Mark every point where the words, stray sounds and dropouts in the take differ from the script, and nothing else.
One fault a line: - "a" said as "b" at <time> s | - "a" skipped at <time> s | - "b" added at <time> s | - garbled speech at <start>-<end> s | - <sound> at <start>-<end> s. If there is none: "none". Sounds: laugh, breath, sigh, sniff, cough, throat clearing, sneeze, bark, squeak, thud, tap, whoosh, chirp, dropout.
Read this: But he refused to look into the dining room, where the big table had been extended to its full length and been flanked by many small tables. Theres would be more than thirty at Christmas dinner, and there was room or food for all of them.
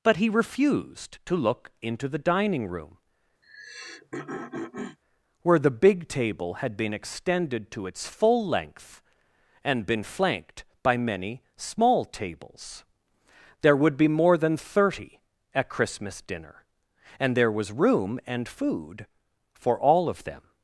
- throat clearing at 3.4-5.0 s
- "Theres" said as "There" at 13.6 s
- "or" said as "and" at 18.3 s